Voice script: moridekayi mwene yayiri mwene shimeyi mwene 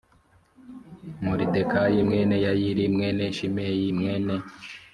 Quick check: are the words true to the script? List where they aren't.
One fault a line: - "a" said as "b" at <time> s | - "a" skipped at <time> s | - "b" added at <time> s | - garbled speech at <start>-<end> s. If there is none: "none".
none